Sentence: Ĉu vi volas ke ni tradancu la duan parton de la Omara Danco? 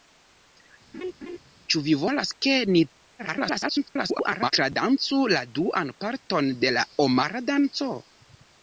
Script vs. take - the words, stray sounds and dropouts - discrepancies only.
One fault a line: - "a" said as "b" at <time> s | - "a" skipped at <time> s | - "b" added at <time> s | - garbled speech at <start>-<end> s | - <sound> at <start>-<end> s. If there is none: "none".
- laugh at 0.9-1.4 s
- garbled speech at 3.2-4.5 s